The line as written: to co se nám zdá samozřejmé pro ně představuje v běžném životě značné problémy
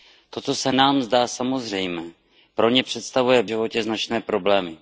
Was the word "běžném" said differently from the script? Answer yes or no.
yes